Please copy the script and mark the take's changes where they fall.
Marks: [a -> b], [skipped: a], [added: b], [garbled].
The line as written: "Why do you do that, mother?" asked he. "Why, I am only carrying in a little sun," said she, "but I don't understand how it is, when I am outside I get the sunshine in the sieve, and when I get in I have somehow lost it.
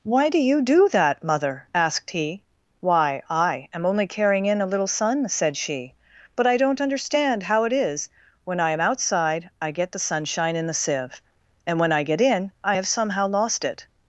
"Why do you do that, mother?" asked he. "Why, I am only carrying in a little sun," said she, "but I don't understand how it is, when I am outside I get the sunshine in the sieve, and when I get in I have somehow lost it.